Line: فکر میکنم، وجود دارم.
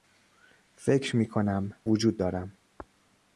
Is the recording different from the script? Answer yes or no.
no